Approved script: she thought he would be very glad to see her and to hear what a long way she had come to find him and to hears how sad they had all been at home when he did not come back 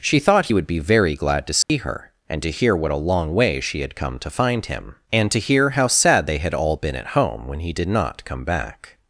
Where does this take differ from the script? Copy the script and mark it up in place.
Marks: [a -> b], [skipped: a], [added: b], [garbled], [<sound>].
she thought he would be very glad to see [dropout] her and to hear what a long way she had come to find him and to [hears -> hear] how sad they had all been at home when he did not come back